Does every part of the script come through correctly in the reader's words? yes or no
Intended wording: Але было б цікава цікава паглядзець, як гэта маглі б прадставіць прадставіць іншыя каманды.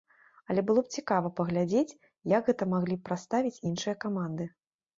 no